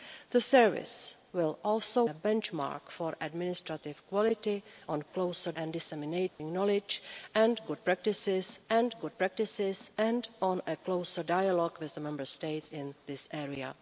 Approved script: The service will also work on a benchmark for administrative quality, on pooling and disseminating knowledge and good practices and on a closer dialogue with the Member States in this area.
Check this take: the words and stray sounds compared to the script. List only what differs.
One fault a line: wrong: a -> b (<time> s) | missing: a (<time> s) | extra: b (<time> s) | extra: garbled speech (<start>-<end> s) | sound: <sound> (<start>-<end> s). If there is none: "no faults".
missing: work on (2.0 s)
wrong: pooling -> closer (5.1 s)
sound: dropout (6.3-6.4 s)
extra: good practices and (9.0 s)